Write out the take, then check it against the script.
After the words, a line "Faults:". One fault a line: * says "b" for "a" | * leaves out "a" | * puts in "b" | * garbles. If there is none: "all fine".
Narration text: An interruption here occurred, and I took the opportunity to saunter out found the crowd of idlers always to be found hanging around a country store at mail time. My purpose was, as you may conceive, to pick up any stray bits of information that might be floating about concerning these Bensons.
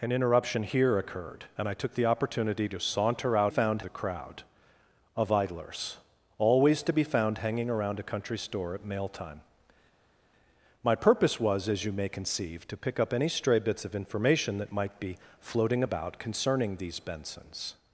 An interruption here occurred, and I took the opportunity to saunter out found the crowd of idlers always to be found hanging around a country store at mail time. My purpose was, as you may conceive, to pick up any stray bits of information that might be floating about concerning these Bensons.
Faults:
all fine